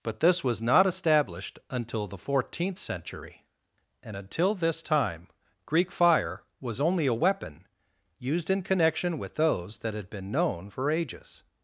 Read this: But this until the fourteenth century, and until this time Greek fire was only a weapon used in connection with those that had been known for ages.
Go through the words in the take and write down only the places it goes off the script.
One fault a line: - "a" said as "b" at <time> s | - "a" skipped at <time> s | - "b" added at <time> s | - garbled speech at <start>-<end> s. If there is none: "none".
- "was not established" added at 0.4 s